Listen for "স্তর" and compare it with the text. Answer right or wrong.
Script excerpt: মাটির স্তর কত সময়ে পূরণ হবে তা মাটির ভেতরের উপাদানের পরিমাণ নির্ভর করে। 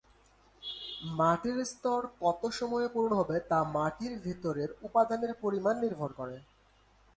right